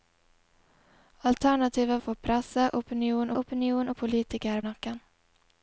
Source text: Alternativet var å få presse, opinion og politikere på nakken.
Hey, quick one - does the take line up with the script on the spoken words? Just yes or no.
no